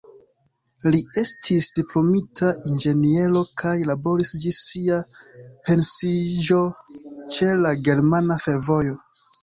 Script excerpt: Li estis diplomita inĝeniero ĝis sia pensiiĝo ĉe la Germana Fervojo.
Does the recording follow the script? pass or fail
fail